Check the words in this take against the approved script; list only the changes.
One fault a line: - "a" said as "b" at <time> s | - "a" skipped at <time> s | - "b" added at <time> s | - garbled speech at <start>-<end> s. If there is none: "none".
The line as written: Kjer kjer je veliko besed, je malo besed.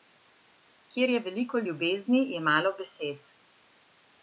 - "kjer" skipped at 1.1 s
- "besed" said as "ljubezni" at 1.7 s